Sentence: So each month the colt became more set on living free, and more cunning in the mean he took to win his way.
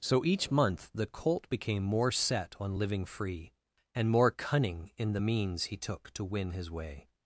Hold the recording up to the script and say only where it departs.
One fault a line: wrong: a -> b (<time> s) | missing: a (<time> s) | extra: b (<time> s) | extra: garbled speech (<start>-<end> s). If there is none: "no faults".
wrong: mean -> means (5.2 s)